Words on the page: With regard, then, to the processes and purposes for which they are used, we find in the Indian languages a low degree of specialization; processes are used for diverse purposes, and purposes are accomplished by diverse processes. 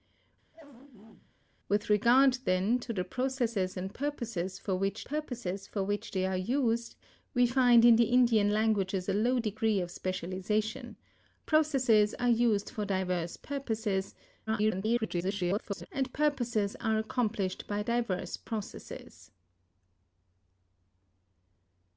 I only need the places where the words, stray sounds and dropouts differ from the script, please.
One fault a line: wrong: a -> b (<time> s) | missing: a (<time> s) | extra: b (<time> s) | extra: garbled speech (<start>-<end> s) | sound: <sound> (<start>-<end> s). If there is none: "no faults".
sound: throat clearing (0.5-1.3 s)
extra: purposes for which (5.1 s)
extra: garbled speech (14.5-15.9 s)